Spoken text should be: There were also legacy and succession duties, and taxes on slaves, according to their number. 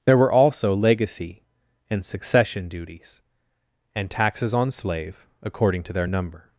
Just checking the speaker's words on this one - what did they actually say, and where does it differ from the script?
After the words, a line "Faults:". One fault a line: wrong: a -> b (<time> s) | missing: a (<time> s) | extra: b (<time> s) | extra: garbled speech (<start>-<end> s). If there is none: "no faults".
There were also legacy and succession duties, and taxes on slave, according to their number.
Faults:
wrong: slaves -> slave (4.7 s)